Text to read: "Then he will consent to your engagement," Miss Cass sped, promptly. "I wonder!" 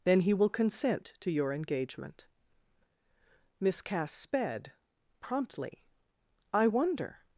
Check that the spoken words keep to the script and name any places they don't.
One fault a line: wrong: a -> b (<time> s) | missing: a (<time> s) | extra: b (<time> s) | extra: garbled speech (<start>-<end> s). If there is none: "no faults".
no faults